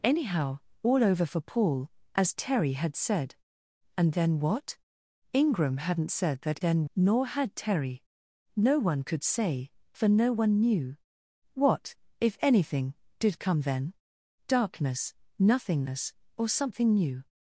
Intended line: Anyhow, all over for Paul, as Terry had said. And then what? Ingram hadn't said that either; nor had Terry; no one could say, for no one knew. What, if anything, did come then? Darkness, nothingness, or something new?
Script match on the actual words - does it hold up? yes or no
no